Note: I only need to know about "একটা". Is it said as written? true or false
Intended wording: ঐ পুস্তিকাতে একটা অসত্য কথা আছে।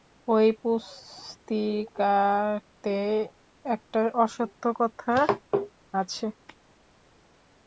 true